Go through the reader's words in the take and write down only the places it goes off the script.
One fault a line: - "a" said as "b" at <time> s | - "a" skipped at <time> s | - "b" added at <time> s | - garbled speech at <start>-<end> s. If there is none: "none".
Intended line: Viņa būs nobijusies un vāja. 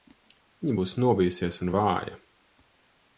none